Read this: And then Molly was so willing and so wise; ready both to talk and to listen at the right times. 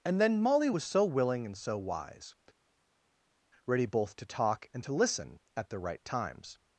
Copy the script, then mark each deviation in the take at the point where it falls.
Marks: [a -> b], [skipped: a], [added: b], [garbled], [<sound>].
And then Molly was so willing and so wise; ready both to talk and to listen at the right times.